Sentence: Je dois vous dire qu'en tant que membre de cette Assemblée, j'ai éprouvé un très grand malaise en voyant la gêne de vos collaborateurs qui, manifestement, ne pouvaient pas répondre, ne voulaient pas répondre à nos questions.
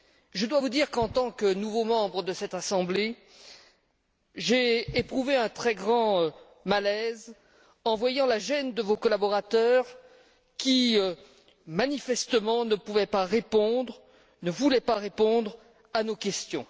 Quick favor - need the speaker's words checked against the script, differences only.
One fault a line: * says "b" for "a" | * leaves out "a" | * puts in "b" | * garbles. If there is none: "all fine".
* puts in "nouveau"